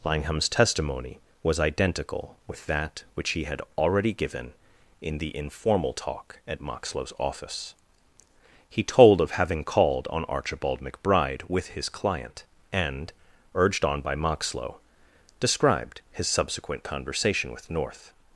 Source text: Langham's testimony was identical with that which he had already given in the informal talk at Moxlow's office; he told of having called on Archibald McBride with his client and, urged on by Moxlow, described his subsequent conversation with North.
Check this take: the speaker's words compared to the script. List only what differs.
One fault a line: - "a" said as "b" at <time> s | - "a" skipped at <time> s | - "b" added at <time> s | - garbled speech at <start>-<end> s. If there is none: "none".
none